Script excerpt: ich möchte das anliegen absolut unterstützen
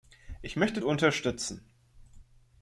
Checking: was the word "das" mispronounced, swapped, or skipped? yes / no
yes